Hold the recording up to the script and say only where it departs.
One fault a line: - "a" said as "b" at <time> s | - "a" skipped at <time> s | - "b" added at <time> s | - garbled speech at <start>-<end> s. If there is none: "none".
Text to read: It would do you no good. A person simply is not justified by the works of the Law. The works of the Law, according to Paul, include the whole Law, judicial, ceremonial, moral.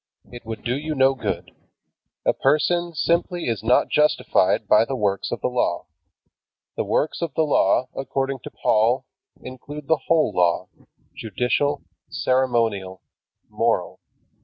none